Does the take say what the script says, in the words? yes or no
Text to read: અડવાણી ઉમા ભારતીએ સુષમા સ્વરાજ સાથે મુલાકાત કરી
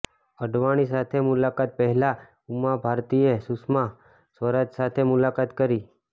no